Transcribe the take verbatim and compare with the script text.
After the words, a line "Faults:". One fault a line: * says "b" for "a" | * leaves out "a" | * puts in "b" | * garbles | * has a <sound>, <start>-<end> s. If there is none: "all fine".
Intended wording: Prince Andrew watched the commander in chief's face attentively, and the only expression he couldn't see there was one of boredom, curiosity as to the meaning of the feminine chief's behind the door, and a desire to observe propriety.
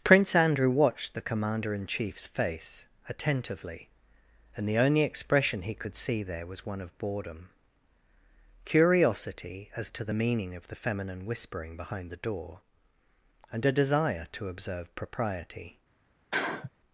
Prince Andrew watched the commander in chief's face attentively, and the only expression he could see there was one of boredom, curiosity as to the meaning of the feminine whispering behind the door, and a desire to observe propriety.
Faults:
* says "could" for "couldn't"
* says "whispering" for "chief's"
* has a sniff, 16.3-16.7 s